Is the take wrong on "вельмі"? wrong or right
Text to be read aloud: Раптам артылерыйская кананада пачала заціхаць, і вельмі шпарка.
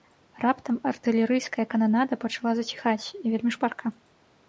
right